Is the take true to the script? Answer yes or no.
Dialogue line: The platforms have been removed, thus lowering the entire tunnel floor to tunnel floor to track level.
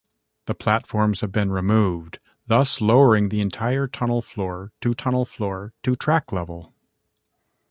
yes